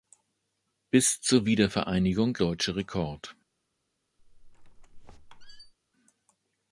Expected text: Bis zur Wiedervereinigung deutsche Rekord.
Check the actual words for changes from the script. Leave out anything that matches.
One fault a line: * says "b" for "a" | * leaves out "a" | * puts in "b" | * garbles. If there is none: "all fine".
all fine